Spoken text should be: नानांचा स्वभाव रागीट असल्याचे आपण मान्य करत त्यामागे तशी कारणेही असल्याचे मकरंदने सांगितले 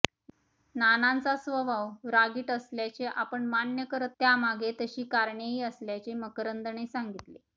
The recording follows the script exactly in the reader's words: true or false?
true